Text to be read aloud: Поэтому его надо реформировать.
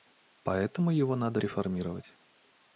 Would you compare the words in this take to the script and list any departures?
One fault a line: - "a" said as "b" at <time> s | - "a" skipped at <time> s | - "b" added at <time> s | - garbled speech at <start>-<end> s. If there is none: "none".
none